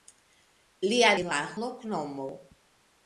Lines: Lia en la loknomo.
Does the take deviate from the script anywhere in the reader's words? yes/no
no